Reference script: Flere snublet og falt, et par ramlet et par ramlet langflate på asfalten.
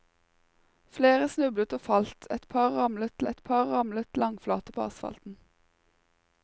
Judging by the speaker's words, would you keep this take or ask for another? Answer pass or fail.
pass